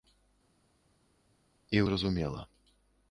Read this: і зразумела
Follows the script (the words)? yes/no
yes